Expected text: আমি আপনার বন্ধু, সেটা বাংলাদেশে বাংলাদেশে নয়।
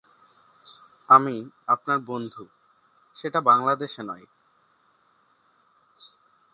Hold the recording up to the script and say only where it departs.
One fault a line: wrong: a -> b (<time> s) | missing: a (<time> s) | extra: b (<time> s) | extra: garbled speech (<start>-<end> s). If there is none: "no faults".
missing: বাংলাদেশে (4.0 s)